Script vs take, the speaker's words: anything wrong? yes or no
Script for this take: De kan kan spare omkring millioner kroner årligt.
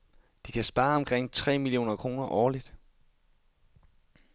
yes